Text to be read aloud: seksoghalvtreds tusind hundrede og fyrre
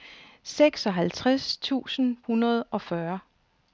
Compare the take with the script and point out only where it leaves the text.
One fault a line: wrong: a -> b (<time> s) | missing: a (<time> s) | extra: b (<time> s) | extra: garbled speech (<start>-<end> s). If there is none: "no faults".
no faults